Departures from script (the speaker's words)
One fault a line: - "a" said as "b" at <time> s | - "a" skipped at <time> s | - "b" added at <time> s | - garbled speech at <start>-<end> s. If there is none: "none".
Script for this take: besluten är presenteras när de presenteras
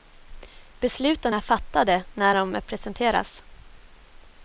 - "presenteras" said as "fattade" at 1.4 s